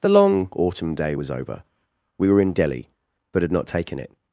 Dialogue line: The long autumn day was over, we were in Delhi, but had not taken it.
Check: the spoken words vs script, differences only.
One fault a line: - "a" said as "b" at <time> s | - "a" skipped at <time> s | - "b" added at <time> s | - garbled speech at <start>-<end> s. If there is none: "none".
none